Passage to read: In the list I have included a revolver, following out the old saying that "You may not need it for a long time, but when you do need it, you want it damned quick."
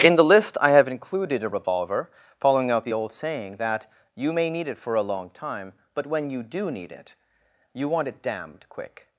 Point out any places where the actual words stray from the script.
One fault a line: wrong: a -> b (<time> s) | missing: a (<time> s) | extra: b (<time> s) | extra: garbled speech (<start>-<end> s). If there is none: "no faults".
missing: not (4.5 s)